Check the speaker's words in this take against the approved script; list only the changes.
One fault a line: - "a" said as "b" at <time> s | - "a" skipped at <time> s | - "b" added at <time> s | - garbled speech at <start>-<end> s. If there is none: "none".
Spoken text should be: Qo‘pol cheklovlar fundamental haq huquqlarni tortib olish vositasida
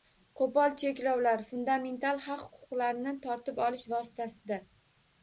none